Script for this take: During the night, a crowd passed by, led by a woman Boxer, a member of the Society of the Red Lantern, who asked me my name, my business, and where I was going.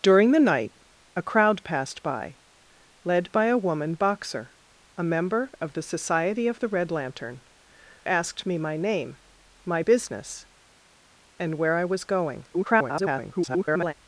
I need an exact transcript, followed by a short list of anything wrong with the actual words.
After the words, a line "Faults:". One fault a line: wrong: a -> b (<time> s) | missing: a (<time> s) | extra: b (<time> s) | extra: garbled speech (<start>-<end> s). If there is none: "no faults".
During the night, a crowd passed by, led by a woman Boxer, a member of the Society of the Red Lantern, asked me my name, my business, and where I was going. [garbled]
Faults:
missing: who (7.4 s)
extra: garbled speech (12.5-13.9 s)